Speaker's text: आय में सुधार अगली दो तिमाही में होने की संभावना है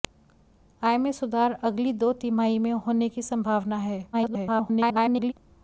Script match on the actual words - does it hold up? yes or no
no